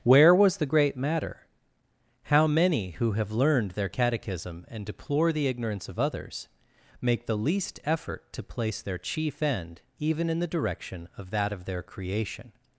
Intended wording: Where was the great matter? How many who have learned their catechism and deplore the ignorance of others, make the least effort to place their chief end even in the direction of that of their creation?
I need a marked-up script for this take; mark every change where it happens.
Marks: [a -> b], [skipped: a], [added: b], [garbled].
Where was the great matter? How many who have learned their catechism and deplore the ignorance of others, make the least effort to place their chief end even in the direction of that of their creation?